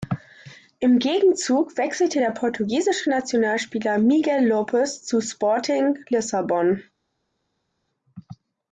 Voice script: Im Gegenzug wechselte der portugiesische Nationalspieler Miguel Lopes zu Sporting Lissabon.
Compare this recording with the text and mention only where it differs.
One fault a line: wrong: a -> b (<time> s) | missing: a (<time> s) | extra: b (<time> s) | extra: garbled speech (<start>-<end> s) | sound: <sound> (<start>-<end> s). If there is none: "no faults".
no faults